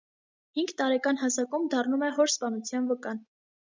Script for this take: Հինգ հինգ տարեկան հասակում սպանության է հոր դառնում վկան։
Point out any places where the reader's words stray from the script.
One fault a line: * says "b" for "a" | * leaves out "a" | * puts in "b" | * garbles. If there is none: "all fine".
* leaves out "հինգ"
* says "դառնում" for "սպանության"
* says "սպանության" for "դառնում"